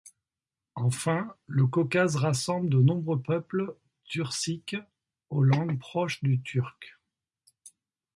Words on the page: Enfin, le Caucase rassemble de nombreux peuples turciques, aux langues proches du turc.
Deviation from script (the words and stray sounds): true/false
false